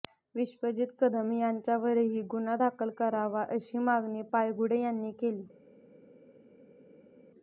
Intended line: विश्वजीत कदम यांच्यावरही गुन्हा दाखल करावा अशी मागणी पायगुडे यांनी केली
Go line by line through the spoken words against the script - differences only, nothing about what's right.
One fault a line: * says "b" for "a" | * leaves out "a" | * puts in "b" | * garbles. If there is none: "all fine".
all fine